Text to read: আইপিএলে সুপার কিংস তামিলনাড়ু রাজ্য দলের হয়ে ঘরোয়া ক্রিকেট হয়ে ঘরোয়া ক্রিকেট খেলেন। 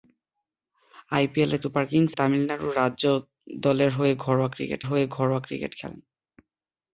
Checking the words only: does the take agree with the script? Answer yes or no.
yes